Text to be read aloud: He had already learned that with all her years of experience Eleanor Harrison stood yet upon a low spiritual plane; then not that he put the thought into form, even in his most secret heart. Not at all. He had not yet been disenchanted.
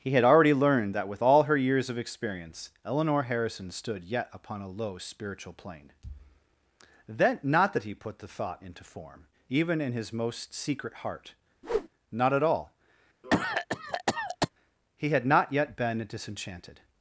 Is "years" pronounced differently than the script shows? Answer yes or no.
no